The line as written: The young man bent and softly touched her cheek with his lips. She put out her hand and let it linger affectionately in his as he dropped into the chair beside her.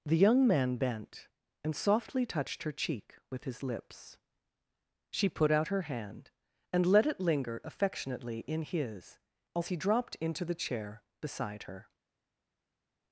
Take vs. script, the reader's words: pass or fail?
pass